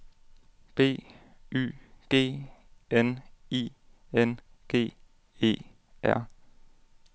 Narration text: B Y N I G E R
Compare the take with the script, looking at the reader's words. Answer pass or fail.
fail